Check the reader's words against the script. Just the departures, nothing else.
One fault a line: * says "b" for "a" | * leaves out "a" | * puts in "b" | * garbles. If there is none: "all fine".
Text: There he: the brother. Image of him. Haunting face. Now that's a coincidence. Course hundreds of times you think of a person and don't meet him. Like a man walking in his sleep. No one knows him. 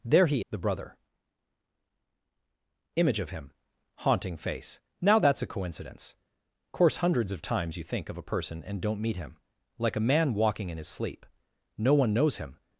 all fine